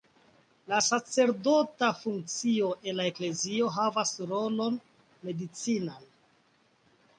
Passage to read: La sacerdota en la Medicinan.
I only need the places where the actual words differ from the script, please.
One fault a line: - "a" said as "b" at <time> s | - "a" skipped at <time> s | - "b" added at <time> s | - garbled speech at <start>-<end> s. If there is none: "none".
- "funkcio" added at 2.1 s
- "Eklezio havas rolon" added at 3.1 s